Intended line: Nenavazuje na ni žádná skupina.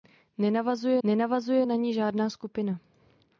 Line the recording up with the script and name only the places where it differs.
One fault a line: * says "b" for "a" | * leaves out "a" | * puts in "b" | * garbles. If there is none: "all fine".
* puts in "nenavazuje"